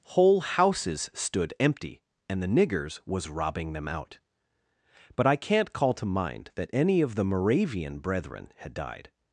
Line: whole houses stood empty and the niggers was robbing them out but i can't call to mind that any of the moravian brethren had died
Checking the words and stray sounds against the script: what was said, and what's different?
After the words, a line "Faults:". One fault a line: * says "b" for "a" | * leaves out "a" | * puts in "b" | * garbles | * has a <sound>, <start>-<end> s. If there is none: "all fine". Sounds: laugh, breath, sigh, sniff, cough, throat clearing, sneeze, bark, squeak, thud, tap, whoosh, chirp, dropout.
whole houses stood empty and the niggers was robbing them out but i can't call to mind that any of the moravian brethren had died
Faults:
all fine